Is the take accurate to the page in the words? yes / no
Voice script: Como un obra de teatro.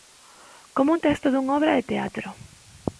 no